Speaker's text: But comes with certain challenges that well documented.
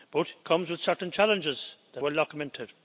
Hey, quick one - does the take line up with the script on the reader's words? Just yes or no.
yes